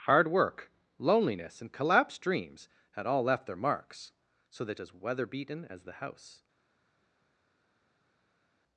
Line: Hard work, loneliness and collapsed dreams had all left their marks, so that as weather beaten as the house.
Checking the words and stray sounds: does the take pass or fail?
pass